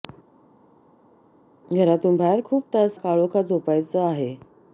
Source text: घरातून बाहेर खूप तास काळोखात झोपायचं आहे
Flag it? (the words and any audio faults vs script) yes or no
no